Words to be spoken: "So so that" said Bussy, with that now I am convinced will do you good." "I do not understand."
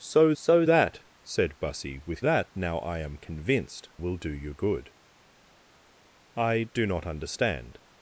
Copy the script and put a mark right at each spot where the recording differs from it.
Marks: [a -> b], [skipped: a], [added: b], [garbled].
"So so that" said Bussy, with that now I am convinced will do you good." "I do not understand."